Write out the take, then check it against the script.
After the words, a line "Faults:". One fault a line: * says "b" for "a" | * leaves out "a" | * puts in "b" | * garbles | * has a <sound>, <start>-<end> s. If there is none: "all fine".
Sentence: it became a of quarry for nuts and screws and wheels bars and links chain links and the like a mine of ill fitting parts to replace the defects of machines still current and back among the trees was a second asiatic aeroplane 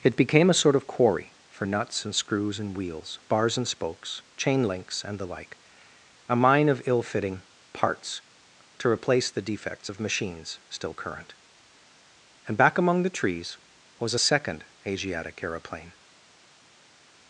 it became a sort of quarry for nuts and screws and wheels bars and spokes chain links and the like a mine of ill fitting parts to replace the defects of machines still current and back among the trees was a second asiatic aeroplane
Faults:
* puts in "sort"
* says "spokes" for "links"